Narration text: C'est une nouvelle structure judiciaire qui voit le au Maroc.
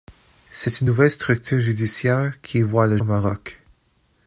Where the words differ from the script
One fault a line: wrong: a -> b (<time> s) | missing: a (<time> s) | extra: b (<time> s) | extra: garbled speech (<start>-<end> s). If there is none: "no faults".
no faults